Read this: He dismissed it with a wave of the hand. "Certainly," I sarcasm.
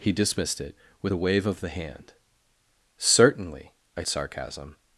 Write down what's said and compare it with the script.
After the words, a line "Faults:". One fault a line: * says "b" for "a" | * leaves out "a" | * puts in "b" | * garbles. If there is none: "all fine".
He dismissed it with a wave of the hand. "Certainly," I sarcasm.
Faults:
all fine